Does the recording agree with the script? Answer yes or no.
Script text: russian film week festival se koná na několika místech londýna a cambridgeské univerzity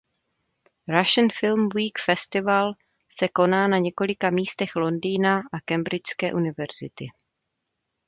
yes